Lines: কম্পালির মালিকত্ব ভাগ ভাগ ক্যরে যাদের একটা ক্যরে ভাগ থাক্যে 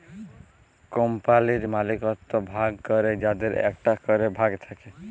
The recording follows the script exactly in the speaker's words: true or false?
false